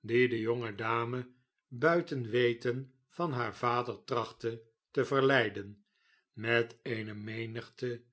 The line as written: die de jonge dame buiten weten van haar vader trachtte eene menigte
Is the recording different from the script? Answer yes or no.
yes